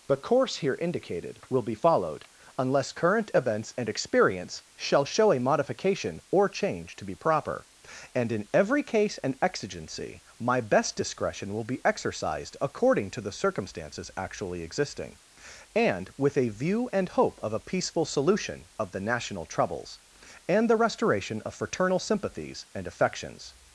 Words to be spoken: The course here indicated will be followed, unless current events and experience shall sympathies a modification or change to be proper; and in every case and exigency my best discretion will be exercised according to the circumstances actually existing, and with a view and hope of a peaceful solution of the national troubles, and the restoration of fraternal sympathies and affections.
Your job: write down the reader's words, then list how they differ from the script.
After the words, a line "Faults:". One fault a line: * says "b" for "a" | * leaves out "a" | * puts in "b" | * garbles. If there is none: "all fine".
The course here indicated will be followed, unless current events and experience shall show a modification or change to be proper; and in every case and exigency my best discretion will be exercised according to the circumstances actually existing, and with a view and hope of a peaceful solution of the national troubles, and the restoration of fraternal sympathies and affections.
Faults:
* says "show" for "sympathies"